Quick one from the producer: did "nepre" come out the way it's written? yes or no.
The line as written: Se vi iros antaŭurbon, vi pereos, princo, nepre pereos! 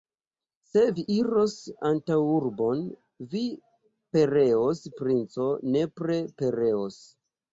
yes